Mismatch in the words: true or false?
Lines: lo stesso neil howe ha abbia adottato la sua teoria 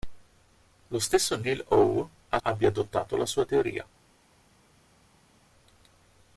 false